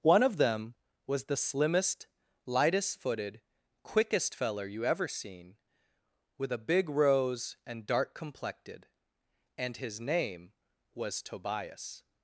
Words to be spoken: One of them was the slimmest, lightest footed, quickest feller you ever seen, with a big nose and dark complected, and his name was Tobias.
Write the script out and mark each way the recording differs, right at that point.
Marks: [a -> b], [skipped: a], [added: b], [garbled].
One of them was the slimmest, lightest footed, quickest feller you ever seen, with a big [nose -> rose] and dark complected, and his name was Tobias.